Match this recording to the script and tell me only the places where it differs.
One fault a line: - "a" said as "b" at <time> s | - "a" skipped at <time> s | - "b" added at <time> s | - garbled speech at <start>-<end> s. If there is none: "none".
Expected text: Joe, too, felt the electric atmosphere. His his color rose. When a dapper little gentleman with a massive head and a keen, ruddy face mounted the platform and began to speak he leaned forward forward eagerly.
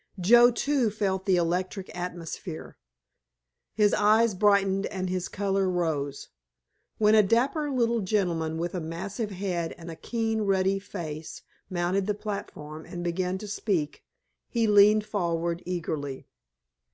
- "eyes brightened and" added at 3.9 s
- "forward" skipped at 15.6 s